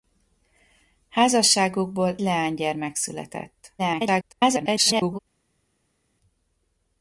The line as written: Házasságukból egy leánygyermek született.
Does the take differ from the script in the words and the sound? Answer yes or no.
yes